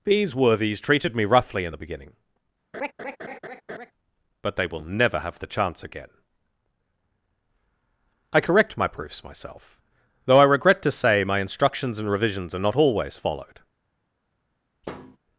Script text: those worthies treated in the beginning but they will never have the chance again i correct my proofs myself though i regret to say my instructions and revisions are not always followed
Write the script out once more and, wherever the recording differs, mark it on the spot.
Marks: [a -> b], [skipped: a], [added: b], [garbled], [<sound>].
[those -> these] worthies treated [added: me roughly] in the beginning [laugh] but they will never have the chance again i correct my proofs myself though i regret to say my instructions and revisions are not always followed [thud]